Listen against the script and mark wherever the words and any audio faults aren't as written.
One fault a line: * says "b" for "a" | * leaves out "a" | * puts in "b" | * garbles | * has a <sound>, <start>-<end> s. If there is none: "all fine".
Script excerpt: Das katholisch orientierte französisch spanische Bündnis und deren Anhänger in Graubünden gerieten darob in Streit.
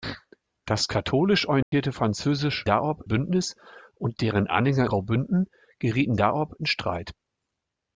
* has a dropout, 1.6-1.7 s
* says "darob" for "spanische"
* leaves out "in"